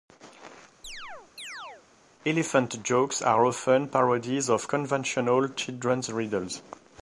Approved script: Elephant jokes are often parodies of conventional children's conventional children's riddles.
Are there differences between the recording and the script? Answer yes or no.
yes